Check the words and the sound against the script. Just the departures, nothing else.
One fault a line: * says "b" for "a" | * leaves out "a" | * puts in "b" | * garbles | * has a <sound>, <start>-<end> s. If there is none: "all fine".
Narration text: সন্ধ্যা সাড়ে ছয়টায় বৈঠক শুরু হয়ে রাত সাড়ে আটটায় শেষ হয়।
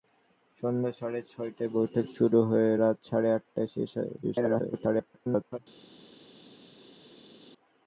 * garbles